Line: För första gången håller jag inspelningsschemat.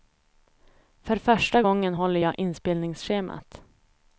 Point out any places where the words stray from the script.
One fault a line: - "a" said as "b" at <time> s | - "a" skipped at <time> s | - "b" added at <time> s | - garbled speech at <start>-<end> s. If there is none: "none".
none